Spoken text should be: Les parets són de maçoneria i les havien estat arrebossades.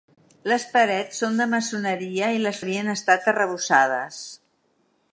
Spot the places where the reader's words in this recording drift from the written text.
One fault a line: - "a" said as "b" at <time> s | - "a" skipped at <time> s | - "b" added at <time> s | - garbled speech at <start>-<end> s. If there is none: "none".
none